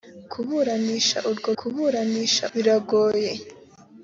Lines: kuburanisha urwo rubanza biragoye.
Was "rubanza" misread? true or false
true